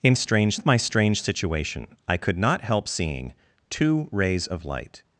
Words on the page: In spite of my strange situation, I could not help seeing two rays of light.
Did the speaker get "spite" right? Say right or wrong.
wrong